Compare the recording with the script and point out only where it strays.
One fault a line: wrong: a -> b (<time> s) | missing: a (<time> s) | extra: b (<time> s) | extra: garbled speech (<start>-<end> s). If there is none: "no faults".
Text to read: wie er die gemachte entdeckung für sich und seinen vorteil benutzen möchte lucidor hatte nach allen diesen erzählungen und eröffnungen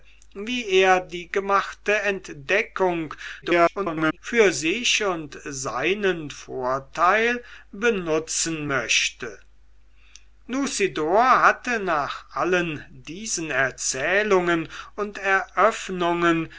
extra: garbled speech (3.4-4.2 s)